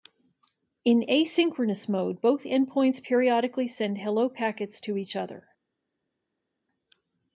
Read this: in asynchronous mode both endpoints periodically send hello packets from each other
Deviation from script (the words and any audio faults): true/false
true